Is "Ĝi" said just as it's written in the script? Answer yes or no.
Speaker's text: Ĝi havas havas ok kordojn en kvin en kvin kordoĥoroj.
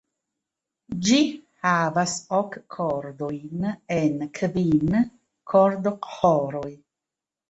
yes